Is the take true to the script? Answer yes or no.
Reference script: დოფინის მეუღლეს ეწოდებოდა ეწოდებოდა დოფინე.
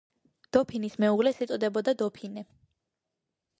no